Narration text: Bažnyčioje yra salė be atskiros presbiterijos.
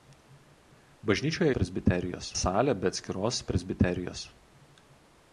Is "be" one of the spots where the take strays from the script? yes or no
no